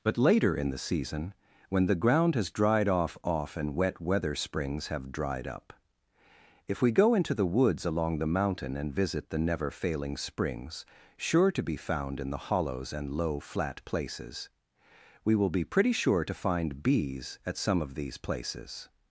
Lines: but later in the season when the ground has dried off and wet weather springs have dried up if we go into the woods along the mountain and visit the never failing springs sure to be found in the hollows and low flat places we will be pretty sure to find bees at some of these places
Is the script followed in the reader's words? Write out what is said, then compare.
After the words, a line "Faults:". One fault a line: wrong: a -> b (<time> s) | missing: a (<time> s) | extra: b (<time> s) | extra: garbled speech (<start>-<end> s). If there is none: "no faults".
but later in the season when the ground has dried off off and wet weather springs have dried up if we go into the woods along the mountain and visit the never failing springs sure to be found in the hollows and low flat places we will be pretty sure to find bees at some of these places
Faults:
extra: off (3.2 s)